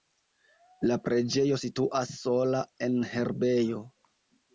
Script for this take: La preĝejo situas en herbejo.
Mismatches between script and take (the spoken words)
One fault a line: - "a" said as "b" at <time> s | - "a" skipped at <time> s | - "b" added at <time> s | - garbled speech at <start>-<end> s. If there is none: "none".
- "sola" added at 2.2 s